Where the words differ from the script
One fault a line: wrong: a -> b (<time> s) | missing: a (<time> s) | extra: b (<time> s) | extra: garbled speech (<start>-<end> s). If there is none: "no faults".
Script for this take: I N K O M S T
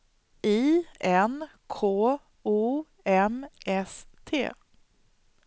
no faults